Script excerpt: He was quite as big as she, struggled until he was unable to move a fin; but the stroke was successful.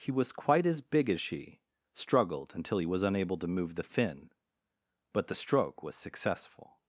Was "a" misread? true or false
true